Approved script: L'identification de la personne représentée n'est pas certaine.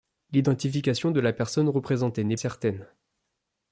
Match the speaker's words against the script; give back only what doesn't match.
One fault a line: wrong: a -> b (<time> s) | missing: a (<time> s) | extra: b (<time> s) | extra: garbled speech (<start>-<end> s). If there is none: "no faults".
missing: pas (2.4 s)